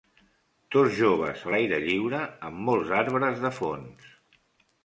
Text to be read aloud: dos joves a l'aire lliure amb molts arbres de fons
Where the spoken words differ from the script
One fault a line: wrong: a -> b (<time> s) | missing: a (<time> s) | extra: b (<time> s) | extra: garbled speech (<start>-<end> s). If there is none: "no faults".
no faults